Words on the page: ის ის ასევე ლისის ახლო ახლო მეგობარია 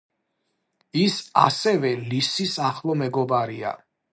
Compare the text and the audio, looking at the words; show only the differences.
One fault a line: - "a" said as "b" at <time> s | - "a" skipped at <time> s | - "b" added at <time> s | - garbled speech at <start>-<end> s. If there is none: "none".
- "ის" skipped at 1.2 s
- "ახლო" skipped at 3.0 s